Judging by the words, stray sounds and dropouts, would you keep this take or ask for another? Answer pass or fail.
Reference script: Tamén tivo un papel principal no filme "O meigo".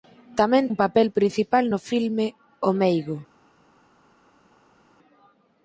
fail